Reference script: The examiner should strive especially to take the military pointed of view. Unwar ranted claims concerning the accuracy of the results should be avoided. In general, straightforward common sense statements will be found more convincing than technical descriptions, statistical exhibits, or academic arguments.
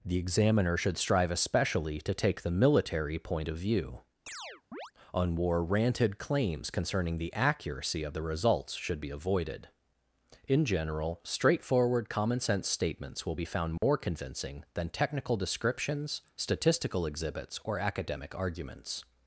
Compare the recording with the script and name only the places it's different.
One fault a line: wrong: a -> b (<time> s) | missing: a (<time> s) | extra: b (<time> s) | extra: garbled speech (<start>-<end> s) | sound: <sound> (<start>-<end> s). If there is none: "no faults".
wrong: pointed -> point (3.2 s)
sound: chirp (4.3-4.9 s)
sound: dropout (13.8-13.8 s)